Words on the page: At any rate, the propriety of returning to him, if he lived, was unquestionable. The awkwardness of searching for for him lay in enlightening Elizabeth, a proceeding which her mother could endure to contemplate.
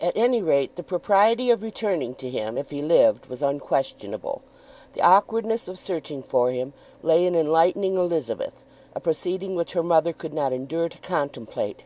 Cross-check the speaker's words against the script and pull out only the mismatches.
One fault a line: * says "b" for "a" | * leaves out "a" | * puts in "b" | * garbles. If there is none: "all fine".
* leaves out "for"
* puts in "not"